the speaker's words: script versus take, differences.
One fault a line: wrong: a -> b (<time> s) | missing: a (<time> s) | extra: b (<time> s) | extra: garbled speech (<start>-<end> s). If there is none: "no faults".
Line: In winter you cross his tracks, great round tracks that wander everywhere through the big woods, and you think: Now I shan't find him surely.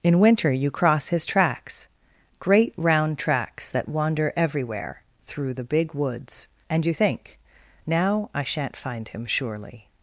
no faults